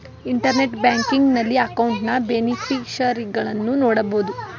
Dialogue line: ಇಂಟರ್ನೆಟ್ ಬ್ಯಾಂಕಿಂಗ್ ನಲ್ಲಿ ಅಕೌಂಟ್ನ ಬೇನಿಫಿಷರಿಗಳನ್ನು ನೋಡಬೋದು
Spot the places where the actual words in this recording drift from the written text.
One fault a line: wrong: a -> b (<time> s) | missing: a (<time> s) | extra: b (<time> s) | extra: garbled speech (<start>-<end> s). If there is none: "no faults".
no faults